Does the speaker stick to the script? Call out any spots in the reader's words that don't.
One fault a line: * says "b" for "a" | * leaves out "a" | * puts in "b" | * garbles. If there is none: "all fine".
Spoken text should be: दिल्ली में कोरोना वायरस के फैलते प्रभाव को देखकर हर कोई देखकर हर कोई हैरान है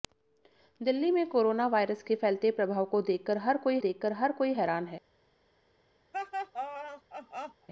all fine